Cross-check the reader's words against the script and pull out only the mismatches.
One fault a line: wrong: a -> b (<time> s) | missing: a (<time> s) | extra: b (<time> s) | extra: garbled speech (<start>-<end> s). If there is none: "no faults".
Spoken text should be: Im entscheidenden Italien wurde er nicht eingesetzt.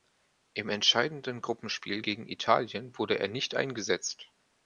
extra: Gruppenspiel gegen (1.4 s)